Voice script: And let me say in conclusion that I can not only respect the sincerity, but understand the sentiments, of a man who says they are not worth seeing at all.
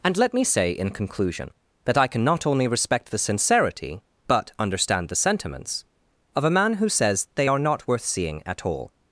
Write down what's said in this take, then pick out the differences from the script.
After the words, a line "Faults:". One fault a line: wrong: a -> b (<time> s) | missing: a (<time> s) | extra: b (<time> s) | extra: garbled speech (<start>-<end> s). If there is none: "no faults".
And let me say in conclusion that I can not only respect the sincerity, but understand the sentiments, of a man who says they are not worth seeing at all.
Faults:
no faults